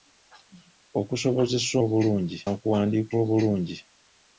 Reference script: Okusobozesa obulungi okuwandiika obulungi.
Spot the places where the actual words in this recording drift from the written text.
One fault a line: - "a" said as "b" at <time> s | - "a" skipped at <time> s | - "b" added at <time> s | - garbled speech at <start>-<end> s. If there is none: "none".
none